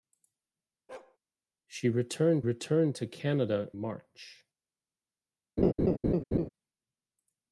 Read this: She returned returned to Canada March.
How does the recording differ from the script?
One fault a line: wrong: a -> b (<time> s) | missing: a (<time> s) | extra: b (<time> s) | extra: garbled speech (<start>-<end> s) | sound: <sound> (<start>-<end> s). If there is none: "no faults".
sound: bark (0.9-1.2 s)
sound: laugh (5.6-6.5 s)